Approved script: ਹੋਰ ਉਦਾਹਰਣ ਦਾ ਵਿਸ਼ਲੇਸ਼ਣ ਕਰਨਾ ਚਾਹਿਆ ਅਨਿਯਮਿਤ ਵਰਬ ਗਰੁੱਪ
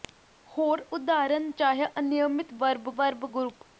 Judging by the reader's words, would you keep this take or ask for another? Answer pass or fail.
fail